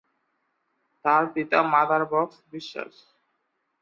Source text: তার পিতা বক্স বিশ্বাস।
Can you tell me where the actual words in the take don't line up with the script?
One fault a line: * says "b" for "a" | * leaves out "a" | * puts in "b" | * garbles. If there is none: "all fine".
* puts in "মাদার"